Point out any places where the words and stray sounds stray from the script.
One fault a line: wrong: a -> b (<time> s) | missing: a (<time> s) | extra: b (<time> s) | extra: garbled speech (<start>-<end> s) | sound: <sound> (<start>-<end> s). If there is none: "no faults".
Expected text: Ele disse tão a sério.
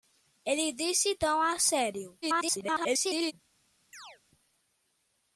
extra: garbled speech (2.2-3.3 s)
sound: chirp (3.9-4.2 s)